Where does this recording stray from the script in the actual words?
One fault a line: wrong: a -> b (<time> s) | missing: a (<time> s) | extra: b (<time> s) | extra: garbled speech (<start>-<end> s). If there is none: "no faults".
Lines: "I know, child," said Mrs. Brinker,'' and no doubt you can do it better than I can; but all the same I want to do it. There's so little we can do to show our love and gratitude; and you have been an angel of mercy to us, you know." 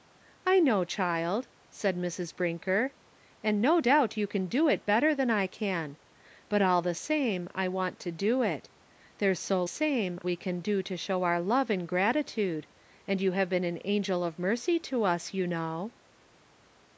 wrong: little -> same (9.7 s)